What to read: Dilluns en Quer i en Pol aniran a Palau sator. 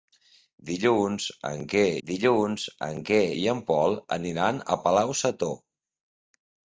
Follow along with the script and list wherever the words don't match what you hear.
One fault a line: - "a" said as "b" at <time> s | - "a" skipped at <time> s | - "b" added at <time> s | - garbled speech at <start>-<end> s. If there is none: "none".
- "dilluns en Quer" added at 2.1 s